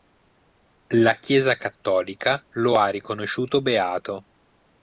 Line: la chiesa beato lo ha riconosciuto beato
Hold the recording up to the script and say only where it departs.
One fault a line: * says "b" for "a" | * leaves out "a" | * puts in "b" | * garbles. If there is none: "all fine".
* says "cattolica" for "beato"